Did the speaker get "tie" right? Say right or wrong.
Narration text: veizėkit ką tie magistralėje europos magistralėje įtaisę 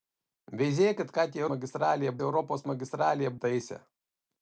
right